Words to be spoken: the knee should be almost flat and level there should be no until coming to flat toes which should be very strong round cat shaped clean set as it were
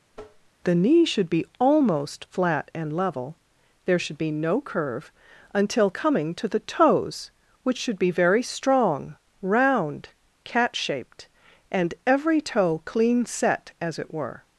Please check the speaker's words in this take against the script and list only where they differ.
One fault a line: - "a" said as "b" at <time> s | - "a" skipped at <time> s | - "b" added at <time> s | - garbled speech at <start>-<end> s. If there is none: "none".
- "curve" added at 4.6 s
- "flat" said as "the" at 6.5 s
- "and every toe" added at 11.7 s